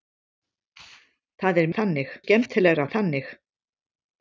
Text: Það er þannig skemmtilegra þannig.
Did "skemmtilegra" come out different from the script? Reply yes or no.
no